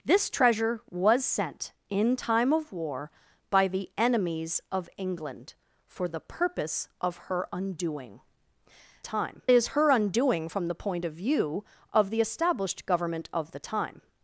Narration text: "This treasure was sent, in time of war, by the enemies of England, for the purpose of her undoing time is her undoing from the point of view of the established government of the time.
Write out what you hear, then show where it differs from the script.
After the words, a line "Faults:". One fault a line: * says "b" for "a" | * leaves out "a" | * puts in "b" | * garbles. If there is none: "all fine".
"This treasure was sent, in time of war, by the enemies of England, for the purpose of her undoing time is her undoing from the point of view of the established government of the time.
Faults:
all fine